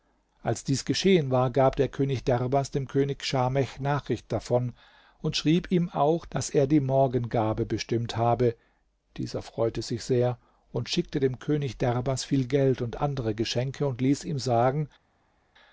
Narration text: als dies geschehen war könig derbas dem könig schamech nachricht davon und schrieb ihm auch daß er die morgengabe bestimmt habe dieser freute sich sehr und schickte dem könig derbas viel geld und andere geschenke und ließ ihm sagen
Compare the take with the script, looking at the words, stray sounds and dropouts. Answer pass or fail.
fail